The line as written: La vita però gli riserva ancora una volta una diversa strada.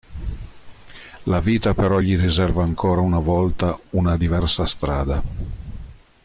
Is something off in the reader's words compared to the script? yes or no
no